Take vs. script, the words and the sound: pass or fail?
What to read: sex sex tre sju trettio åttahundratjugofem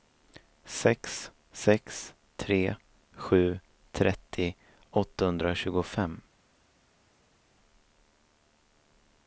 pass